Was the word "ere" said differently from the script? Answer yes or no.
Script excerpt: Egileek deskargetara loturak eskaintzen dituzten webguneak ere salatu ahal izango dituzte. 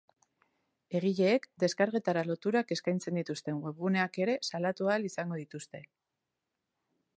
no